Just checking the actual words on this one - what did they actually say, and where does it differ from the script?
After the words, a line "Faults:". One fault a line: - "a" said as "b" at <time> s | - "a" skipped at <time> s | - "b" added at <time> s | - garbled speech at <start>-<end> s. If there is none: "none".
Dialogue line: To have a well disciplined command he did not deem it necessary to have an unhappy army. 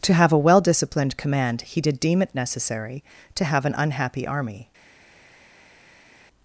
To have a well disciplined command he did deem it necessary to have an unhappy army.
Faults:
- "not" skipped at 2.0 s